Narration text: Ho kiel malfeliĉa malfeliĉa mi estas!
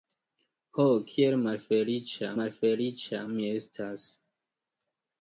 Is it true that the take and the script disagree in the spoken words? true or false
false